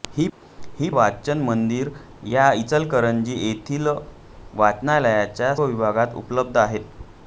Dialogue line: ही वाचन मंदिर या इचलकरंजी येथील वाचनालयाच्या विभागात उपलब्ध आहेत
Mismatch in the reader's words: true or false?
false